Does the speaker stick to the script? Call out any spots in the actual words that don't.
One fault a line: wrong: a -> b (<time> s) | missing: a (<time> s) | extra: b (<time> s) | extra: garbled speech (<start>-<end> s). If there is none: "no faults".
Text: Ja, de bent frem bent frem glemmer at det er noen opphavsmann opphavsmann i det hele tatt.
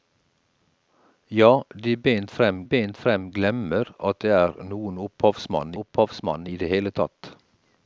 no faults